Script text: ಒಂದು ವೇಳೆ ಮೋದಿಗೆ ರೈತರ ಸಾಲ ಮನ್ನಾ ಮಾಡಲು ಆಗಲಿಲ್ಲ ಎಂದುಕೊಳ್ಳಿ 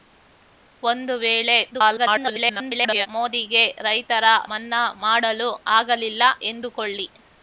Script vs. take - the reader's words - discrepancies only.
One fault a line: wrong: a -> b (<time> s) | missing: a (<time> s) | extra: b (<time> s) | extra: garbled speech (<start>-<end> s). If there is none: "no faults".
extra: garbled speech (1.7-3.1 s)
missing: ಸಾಲ (4.2 s)